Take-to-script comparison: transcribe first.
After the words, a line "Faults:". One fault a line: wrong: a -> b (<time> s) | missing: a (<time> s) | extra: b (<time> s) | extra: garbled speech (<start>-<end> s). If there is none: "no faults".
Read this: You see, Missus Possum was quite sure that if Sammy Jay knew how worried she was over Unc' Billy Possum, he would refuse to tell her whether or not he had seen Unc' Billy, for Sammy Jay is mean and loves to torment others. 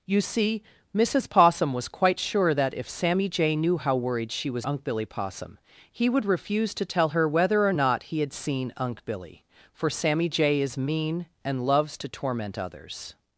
You see, Missus Possum was quite sure that if Sammy Jay knew how worried she was Unc' Billy Possum, he would refuse to tell her whether or not he had seen Unc' Billy, for Sammy Jay is mean and loves to torment others.
Faults:
missing: over (4.7 s)